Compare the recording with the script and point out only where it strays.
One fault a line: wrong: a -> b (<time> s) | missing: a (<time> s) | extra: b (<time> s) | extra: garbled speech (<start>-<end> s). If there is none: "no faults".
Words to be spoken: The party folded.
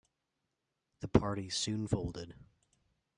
extra: soon (1.5 s)